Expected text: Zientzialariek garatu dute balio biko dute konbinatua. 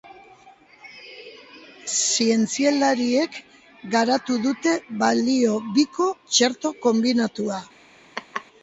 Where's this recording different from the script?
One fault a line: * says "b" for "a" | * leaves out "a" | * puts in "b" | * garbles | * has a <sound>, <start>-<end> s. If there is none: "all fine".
* says "txerto" for "dute"
* has a laugh, 8.2-8.5 s